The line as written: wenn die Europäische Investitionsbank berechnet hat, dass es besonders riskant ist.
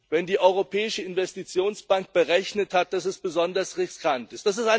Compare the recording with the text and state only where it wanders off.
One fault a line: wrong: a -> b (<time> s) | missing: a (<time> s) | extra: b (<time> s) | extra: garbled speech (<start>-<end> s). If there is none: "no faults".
no faults